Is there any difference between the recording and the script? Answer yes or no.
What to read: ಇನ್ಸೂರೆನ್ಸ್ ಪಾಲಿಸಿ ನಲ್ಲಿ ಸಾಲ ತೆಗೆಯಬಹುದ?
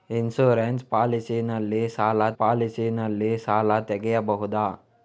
yes